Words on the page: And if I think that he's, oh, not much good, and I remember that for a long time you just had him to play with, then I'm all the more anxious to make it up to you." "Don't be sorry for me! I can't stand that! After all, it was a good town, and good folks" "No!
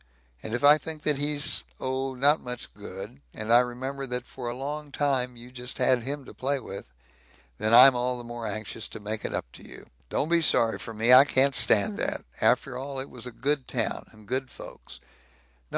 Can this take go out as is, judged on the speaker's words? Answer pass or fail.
pass